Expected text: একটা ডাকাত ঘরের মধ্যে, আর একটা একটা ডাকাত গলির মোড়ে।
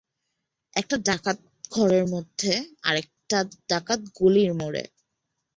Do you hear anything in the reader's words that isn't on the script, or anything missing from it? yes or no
yes